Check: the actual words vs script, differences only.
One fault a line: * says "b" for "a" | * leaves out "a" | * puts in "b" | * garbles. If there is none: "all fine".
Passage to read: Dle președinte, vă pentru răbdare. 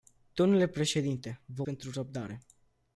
all fine